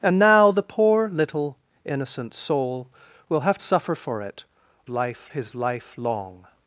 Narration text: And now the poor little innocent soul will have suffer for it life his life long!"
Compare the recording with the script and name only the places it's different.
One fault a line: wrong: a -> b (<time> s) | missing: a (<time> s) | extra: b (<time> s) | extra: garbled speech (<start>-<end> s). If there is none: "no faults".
no faults